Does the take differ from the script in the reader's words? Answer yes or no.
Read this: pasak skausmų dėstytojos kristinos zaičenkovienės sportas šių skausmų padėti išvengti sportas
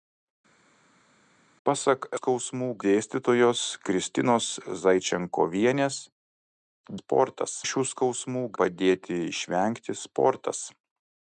no